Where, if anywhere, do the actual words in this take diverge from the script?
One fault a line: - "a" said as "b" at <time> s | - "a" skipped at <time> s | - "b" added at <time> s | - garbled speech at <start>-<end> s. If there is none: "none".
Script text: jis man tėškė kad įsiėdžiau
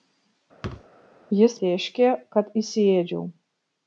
- "man" skipped at 1.6 s